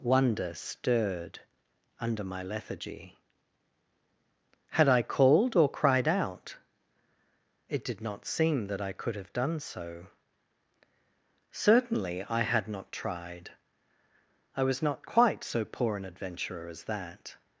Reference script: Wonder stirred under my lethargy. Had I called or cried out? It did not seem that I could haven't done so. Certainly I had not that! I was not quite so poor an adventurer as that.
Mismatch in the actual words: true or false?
true